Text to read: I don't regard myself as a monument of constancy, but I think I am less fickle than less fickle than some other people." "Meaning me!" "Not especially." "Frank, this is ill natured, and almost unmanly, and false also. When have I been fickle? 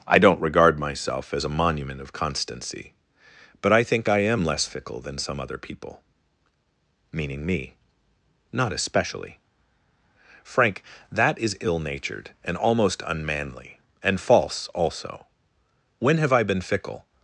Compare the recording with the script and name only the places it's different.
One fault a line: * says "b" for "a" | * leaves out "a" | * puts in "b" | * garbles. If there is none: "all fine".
* leaves out "less fickle than"
* says "that" for "this"